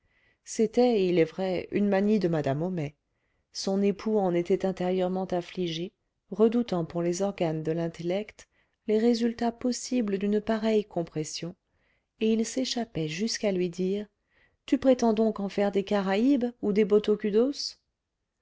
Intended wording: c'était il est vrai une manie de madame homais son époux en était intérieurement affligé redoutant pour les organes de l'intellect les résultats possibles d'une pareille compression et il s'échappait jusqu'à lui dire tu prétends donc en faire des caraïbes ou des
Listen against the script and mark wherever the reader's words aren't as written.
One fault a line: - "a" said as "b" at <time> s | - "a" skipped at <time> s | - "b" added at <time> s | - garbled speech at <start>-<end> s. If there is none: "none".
none